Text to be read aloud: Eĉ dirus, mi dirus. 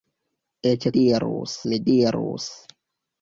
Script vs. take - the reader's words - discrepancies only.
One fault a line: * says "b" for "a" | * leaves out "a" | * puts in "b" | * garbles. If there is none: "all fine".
all fine